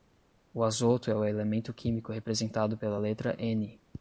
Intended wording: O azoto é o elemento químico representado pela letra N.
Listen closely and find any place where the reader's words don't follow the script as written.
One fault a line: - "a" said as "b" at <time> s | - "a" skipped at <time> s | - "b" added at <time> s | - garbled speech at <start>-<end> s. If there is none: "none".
none